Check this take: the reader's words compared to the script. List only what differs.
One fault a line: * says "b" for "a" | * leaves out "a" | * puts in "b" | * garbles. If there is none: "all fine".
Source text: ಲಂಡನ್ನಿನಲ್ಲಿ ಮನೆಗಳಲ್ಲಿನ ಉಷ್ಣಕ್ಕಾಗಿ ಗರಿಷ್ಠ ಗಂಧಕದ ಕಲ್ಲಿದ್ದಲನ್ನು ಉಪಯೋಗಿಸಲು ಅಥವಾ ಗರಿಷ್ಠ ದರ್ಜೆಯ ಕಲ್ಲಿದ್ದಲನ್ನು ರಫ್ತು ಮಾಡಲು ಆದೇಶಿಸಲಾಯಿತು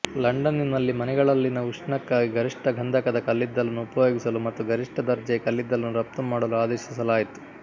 * says "ಮತ್ತು" for "ಅಥವಾ"